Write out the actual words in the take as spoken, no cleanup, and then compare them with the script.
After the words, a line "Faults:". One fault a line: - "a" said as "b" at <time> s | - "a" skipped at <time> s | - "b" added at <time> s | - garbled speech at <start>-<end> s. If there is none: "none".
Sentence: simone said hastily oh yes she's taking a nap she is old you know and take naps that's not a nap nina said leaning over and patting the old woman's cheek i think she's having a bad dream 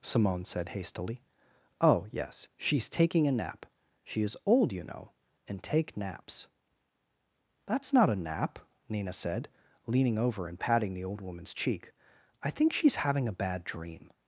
simone said hastily oh yes she's taking a nap she is old you know and take naps that's not a nap nina said leaning over and patting the old woman's cheek i think she's having a bad dream
Faults:
none